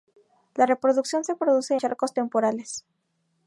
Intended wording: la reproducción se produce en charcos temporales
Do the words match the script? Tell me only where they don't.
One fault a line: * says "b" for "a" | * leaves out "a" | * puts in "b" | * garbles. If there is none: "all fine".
* leaves out "en"